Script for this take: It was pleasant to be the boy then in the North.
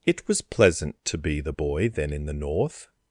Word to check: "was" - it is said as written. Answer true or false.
true